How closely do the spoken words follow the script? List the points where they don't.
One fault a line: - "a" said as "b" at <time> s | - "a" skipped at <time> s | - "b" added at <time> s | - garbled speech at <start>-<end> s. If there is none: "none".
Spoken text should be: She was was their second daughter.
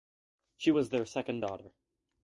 - "was" skipped at 0.9 s